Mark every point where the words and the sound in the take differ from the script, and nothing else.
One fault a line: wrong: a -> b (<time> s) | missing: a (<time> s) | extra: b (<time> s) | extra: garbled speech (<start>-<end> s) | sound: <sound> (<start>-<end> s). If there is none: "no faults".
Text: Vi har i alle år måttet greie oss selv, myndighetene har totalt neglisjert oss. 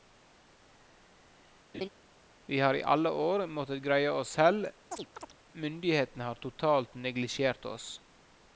sound: laugh (1.7-1.9 s)
sound: chirp (4.9-5.4 s)